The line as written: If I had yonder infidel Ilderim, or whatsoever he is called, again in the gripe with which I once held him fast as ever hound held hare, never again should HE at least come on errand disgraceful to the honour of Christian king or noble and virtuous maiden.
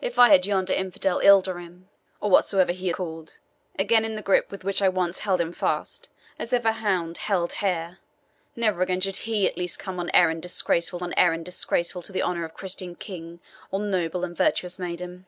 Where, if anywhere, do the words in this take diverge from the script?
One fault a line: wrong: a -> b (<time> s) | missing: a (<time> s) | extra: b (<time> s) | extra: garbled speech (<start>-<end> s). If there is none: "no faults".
missing: is (2.9 s)
extra: on errand disgraceful (11.0 s)